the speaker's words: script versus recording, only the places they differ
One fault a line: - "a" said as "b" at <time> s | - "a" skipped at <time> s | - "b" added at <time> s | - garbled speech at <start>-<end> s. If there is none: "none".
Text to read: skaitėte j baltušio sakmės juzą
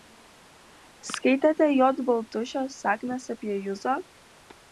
- "apie" added at 3.3 s